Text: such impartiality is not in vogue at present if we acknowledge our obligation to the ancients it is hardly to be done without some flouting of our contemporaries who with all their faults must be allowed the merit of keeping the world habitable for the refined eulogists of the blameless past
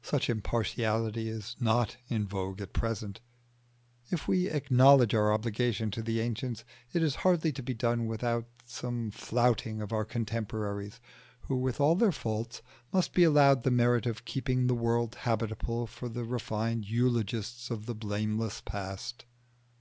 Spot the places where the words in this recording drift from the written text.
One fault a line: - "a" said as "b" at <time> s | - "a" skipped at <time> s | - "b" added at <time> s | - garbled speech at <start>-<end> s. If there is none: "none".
none